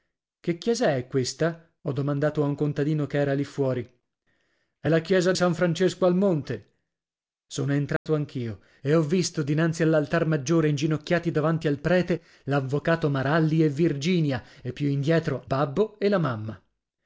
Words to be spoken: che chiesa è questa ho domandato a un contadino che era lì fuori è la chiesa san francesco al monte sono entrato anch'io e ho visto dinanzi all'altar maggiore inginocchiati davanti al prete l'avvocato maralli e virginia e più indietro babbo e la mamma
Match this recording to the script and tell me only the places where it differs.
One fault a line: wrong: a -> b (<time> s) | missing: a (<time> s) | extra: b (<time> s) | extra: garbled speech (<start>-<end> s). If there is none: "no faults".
no faults